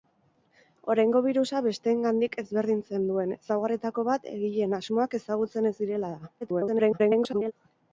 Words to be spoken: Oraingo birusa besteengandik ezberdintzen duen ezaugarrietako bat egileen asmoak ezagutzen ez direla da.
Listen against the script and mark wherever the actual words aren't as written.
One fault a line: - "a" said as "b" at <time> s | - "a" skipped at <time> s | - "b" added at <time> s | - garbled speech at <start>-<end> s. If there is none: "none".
- garbled speech at 6.4-7.5 s